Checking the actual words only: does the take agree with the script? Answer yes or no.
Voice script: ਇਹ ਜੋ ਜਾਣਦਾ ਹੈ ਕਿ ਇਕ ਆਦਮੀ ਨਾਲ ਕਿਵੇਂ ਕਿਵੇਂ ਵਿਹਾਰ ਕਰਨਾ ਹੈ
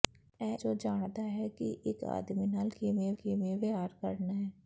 yes